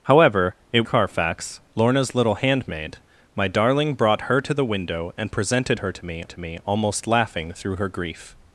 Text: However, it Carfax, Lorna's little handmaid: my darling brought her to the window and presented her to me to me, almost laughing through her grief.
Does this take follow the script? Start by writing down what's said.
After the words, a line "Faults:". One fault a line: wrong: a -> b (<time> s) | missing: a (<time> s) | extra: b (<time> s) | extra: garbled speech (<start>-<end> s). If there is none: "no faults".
However, it Carfax, Lorna's little handmaid: my darling brought her to the window and presented her to me to me, almost laughing through her grief.
Faults:
no faults